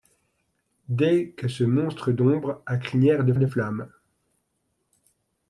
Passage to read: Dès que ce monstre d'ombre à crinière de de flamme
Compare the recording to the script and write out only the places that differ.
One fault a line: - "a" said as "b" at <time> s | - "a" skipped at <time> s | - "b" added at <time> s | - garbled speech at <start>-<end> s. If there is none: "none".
none